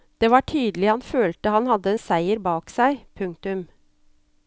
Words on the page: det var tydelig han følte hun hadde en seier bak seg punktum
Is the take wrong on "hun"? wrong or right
wrong